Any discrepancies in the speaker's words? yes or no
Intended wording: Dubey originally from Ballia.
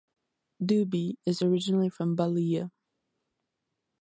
yes